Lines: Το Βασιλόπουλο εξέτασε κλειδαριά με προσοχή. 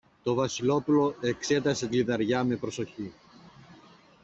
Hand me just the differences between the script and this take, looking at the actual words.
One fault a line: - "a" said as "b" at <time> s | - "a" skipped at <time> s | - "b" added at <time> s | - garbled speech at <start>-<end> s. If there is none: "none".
none